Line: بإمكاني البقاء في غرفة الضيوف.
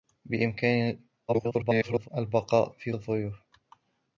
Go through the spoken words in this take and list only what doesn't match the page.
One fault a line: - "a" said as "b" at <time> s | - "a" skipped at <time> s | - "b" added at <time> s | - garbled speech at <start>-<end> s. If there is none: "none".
- garbled speech at 1.3-2.1 s
- "غرفة" skipped at 2.9 s